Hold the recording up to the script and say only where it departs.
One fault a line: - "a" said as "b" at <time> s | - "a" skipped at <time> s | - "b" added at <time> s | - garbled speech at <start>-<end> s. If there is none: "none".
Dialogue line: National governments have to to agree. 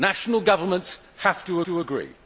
none